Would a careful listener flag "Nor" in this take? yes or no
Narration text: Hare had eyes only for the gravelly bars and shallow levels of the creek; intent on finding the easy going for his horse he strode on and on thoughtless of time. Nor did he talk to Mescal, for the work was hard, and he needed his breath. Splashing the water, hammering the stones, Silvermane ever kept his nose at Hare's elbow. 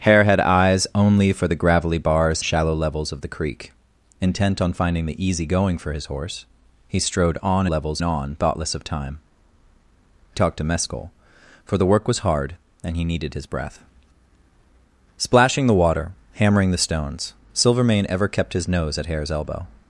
yes